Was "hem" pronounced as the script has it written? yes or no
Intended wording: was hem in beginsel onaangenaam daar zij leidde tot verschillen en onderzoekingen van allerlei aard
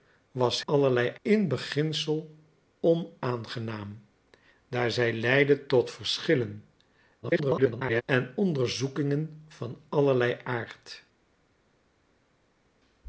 no